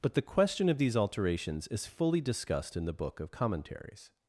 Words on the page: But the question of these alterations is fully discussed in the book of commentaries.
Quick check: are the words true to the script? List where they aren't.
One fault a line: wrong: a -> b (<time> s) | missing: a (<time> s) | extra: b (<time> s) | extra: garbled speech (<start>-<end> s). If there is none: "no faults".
no faults